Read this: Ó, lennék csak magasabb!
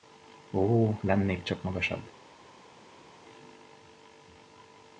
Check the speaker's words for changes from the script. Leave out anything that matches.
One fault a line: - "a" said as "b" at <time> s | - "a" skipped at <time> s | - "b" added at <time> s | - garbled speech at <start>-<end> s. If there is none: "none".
none